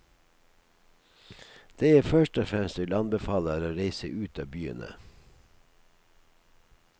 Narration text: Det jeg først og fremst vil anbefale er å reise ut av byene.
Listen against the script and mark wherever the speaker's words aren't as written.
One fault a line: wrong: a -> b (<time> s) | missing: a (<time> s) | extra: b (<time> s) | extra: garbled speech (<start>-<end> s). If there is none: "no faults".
no faults